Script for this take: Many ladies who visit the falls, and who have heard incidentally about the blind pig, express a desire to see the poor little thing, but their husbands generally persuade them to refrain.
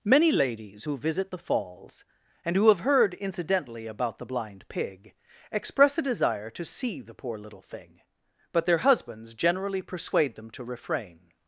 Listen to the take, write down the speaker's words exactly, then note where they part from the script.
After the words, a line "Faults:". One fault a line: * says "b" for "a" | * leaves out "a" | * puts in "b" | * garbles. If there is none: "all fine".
Many ladies who visit the falls, and who have heard incidentally about the blind pig, express a desire to see the poor little thing, but their husbands generally persuade them to refrain.
Faults:
all fine